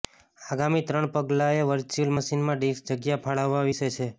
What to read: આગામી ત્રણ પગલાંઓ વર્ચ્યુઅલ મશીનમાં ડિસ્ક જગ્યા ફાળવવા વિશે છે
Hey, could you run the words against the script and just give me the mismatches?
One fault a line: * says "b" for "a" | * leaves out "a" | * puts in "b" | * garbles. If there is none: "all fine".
all fine